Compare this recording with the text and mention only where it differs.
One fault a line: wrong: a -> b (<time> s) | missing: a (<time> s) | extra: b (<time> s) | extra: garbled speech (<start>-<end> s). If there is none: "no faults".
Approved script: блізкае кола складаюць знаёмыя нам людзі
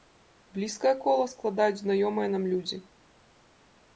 no faults